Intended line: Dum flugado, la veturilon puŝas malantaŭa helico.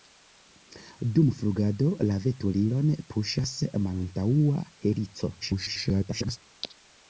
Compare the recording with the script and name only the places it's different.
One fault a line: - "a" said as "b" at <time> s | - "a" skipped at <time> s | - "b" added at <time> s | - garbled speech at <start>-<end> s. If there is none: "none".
- garbled speech at 5.4-6.4 s